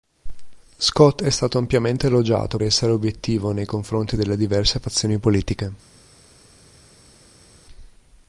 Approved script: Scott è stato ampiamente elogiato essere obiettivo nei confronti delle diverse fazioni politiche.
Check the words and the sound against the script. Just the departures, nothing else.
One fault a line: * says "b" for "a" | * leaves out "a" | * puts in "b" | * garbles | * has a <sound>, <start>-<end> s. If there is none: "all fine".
all fine